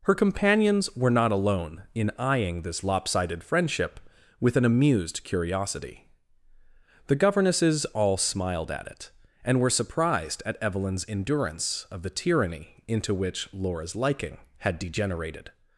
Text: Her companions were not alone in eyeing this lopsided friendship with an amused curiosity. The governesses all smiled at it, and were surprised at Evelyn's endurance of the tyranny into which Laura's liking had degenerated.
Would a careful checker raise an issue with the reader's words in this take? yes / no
no